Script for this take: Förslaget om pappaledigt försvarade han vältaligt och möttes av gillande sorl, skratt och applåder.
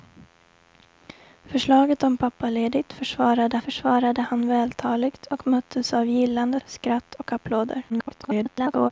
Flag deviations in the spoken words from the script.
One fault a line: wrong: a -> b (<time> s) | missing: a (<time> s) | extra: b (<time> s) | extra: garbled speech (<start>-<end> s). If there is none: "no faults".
extra: försvarade (3.6 s)
missing: sorl (6.6 s)
extra: garbled speech (7.9-8.9 s)